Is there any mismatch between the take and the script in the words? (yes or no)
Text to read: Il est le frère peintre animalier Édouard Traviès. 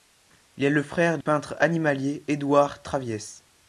no